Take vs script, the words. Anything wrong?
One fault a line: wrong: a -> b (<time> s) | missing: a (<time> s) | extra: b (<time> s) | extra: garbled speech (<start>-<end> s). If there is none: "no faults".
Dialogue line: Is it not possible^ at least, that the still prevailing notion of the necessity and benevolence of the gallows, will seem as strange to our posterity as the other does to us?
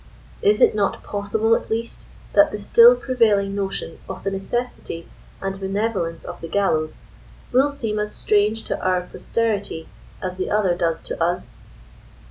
no faults